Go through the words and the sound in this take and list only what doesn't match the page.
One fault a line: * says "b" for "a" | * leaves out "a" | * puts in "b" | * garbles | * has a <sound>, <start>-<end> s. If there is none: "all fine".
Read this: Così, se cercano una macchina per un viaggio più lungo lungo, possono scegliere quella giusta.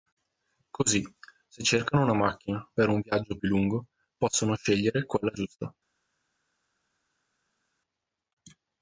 * leaves out "lungo"